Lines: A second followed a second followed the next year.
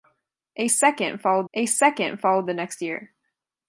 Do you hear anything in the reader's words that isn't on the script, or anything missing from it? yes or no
no